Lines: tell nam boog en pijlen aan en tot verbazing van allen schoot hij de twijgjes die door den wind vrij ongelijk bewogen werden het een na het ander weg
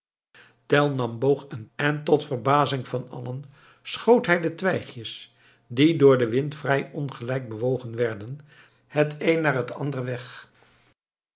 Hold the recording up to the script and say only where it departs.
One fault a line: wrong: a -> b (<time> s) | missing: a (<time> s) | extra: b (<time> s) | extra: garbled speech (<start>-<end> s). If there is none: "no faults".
missing: pijlen aan (1.7 s)